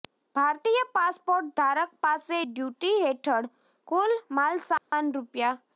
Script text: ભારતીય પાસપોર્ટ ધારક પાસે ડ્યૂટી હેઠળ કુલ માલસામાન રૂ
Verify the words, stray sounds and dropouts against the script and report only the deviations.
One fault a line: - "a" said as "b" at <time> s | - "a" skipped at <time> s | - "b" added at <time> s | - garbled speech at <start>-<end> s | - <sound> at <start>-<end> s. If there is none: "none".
- dropout at 4.8-4.9 s